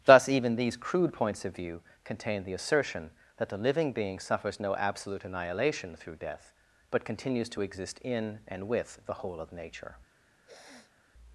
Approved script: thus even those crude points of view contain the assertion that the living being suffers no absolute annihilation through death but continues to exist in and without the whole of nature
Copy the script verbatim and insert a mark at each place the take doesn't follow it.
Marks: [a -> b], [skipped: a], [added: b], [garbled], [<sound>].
thus even [those -> these] crude points of view contain the assertion that the living being suffers no absolute annihilation through death but continues to exist in and [without -> with] the whole of nature [sniff]